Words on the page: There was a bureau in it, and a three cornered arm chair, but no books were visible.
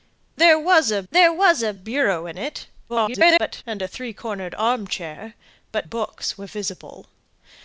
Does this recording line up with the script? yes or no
no